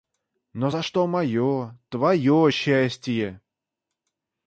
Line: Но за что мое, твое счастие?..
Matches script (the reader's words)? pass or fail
pass